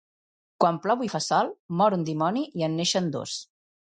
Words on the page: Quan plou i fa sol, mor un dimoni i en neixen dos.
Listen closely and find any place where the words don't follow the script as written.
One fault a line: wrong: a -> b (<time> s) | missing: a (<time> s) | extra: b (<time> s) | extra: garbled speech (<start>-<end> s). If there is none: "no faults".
no faults